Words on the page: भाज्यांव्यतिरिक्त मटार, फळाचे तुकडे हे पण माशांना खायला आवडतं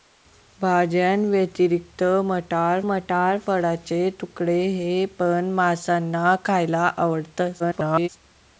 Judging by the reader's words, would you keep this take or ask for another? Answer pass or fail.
fail